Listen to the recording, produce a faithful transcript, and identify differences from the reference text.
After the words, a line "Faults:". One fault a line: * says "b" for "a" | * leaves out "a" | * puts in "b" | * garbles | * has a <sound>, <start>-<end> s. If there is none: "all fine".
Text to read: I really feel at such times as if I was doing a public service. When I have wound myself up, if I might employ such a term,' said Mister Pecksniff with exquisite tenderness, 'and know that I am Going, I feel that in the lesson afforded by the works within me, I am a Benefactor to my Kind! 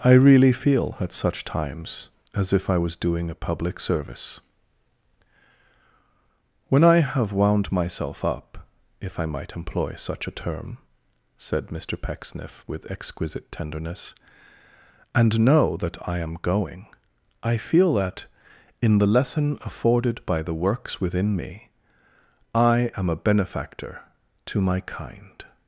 I really feel at such times as if I was doing a public service. When I have wound myself up, if I might employ such a term,' said Mister Pecksniff with exquisite tenderness, 'and know that I am Going, I feel that in the lesson afforded by the works within me, I am a Benefactor to my Kind!
Faults:
all fine